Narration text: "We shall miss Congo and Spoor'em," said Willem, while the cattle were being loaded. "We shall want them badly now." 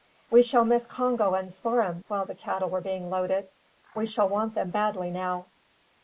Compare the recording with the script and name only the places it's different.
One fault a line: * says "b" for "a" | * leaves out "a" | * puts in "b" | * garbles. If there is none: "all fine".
* leaves out "said Willem"